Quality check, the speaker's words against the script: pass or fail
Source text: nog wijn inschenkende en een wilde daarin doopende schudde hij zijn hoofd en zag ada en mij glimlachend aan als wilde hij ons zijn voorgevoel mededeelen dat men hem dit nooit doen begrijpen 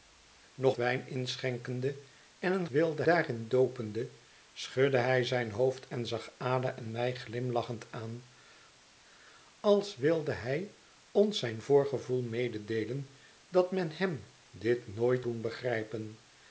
pass